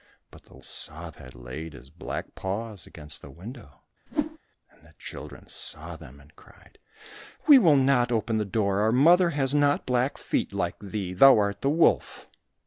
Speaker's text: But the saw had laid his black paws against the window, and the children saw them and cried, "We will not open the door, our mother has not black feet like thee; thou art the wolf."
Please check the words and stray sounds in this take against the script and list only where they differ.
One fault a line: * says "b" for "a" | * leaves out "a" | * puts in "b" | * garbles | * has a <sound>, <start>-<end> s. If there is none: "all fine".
* has a whoosh, 4.1-4.4 s